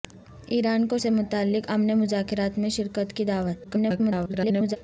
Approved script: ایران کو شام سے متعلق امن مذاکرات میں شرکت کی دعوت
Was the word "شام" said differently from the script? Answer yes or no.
yes